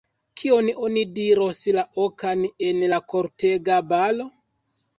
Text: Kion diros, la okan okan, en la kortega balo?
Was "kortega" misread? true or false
false